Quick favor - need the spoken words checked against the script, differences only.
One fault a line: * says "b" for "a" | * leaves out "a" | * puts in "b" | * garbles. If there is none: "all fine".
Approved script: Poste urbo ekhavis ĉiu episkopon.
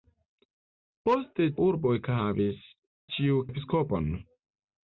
all fine